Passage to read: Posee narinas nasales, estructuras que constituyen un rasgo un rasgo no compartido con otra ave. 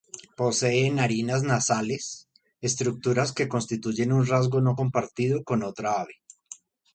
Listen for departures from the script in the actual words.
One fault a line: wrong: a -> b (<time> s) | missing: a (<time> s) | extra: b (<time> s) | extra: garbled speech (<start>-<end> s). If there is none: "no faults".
missing: un rasgo (4.6 s)